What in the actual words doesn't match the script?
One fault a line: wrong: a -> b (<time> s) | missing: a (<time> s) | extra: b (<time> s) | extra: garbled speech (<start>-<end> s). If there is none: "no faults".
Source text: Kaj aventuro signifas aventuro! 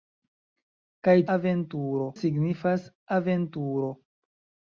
no faults